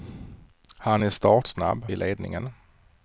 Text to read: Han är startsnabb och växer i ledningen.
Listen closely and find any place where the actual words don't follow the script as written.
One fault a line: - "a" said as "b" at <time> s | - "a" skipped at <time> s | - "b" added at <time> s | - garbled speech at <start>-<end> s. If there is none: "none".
- "och växer" skipped at 1.9 s